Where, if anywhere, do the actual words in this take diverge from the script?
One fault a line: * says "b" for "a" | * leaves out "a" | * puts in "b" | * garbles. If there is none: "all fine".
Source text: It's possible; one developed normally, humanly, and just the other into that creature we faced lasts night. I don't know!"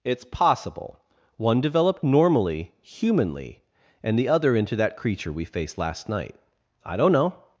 * leaves out "just"
* says "last" for "lasts"